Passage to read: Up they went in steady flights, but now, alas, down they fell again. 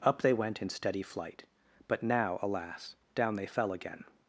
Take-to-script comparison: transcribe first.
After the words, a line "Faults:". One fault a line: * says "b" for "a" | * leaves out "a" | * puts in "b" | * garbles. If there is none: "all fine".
Up they went in steady flight, but now, alas, down they fell again.
Faults:
* says "flight" for "flights"